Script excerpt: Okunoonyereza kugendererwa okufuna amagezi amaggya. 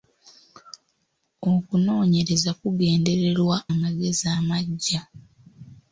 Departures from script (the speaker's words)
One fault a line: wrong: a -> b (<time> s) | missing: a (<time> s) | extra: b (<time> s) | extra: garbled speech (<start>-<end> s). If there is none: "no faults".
missing: okufuna (3.6 s)